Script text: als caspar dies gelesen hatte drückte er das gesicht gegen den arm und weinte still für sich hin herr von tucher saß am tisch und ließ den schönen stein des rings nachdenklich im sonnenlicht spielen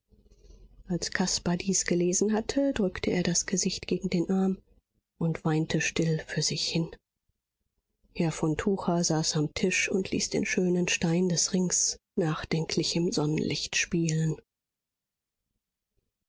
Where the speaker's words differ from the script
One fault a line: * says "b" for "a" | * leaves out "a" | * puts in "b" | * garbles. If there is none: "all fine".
all fine